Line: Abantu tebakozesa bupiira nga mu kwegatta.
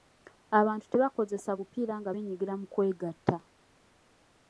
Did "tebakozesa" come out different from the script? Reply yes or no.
no